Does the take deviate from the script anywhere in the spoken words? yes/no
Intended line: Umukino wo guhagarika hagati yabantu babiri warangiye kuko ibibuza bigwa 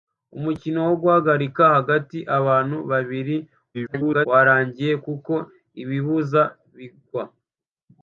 yes